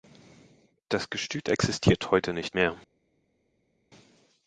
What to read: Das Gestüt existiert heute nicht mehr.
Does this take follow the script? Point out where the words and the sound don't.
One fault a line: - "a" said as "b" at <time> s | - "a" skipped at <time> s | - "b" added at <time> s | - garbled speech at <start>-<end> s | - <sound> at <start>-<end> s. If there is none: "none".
none